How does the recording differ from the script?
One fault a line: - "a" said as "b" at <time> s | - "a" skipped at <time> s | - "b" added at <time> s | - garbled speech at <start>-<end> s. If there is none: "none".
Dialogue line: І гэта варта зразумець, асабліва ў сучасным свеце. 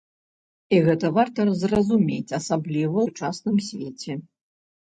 - "ў" skipped at 3.0 s